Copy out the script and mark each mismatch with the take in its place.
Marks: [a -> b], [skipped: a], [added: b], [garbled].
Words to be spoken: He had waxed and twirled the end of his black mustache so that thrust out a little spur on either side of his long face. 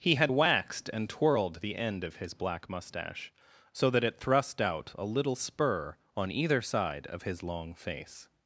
He had waxed and twirled the end of his black mustache so that [added: it] thrust out a little spur on either side of his long face.